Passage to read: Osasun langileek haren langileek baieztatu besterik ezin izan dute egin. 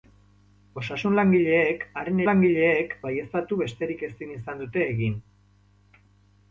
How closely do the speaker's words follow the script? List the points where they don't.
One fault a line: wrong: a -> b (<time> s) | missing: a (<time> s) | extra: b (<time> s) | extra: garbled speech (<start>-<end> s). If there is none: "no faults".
no faults